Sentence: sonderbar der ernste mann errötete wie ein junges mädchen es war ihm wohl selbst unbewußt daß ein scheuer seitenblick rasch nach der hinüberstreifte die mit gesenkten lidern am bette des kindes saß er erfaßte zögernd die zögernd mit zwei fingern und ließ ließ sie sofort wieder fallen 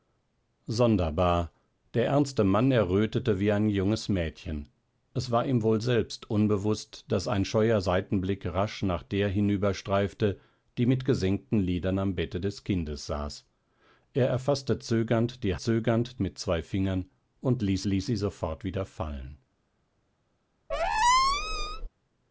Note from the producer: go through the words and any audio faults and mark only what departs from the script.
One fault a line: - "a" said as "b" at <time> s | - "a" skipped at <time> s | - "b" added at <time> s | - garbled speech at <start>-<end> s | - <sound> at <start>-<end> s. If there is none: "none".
- squeak at 20.7-21.9 s